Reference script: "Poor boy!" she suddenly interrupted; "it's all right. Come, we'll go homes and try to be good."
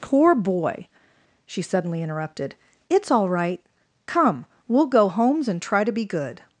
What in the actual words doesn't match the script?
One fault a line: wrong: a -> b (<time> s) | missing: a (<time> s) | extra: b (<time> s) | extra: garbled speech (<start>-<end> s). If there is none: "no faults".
no faults